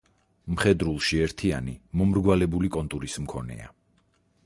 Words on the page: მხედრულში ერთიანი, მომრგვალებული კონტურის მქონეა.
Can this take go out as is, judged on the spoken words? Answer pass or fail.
pass